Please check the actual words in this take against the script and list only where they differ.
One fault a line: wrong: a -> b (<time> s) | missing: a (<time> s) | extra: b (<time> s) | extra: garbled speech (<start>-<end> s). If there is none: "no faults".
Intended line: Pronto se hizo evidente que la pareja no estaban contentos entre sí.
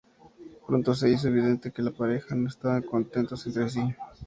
no faults